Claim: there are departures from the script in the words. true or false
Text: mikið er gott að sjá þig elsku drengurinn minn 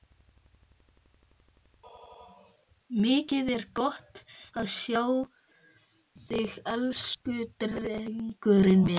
false